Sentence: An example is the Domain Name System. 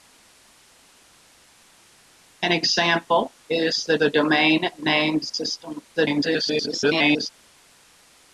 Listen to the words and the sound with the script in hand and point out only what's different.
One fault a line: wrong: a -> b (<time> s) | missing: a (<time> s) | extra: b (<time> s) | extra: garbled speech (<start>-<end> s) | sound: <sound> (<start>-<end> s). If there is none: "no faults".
extra: the (3.9 s)
extra: garbled speech (5.9-7.3 s)